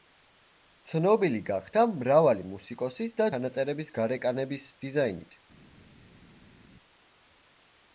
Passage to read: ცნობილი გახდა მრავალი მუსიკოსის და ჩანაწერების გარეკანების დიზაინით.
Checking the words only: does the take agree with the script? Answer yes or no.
yes